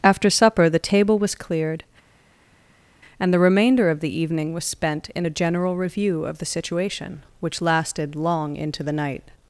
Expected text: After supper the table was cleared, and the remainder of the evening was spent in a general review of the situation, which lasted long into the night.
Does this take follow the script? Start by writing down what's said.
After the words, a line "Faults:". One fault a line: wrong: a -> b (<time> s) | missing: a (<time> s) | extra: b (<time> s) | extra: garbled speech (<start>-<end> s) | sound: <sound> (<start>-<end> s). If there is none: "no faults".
After supper the table was cleared, and the remainder of the evening was spent in a general review of the situation, which lasted long into the night.
Faults:
no faults